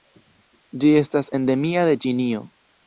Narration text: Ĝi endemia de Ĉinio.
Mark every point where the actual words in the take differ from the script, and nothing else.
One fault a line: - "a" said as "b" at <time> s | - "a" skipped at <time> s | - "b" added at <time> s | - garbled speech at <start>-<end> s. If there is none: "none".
- "estas" added at 1.0 s